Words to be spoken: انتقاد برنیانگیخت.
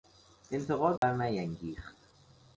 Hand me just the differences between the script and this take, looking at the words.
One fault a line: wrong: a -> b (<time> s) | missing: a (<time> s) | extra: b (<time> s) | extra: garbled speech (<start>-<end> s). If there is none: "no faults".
no faults